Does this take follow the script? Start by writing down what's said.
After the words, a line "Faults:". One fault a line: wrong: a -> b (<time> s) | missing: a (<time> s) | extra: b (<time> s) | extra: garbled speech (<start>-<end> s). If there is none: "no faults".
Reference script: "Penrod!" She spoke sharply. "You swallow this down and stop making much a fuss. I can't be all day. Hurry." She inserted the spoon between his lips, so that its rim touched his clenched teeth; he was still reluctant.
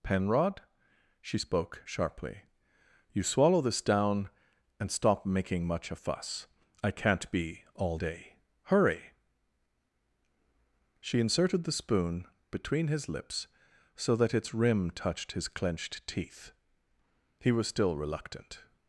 "Penrod!" She spoke sharply. "You swallow this down and stop making much a fuss. I can't be all day. Hurry." She inserted the spoon between his lips, so that its rim touched his clenched teeth; he was still reluctant.
Faults:
no faults